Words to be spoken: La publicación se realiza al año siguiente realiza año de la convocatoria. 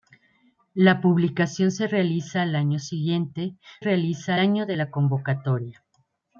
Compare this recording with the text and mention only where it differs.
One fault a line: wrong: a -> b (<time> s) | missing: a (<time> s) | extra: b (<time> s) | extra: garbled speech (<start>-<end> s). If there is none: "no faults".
no faults